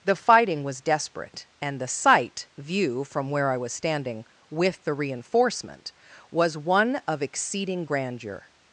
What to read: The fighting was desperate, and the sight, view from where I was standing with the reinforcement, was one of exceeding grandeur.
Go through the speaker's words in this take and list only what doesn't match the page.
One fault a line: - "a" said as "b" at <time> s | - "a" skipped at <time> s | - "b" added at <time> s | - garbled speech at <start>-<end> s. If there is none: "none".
none